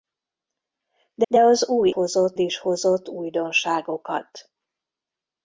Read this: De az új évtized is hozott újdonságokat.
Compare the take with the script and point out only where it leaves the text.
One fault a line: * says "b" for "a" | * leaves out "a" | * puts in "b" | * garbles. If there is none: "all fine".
* puts in "de"
* says "hozott" for "évtized"